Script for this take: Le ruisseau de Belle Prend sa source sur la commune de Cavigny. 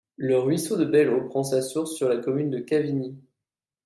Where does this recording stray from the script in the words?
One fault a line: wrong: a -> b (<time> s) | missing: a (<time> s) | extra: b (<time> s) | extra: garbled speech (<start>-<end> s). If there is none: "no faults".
extra: Eau (1.1 s)